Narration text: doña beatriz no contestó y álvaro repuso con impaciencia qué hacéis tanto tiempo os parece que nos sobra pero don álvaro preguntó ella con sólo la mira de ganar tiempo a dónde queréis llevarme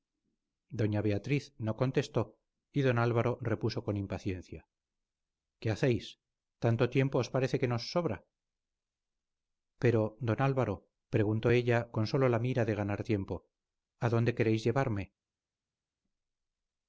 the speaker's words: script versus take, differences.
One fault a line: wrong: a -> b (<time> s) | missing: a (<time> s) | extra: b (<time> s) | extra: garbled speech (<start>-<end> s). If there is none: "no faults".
extra: don (2.9 s)